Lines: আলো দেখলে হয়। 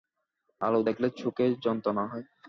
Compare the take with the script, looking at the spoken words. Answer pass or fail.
fail